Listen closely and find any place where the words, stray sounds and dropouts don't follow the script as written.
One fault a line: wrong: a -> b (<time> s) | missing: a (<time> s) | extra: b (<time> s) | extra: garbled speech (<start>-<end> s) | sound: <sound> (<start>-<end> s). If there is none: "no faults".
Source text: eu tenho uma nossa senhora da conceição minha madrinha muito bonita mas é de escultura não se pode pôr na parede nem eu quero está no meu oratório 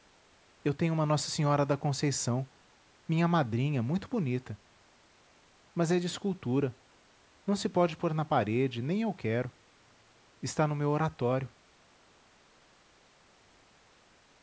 no faults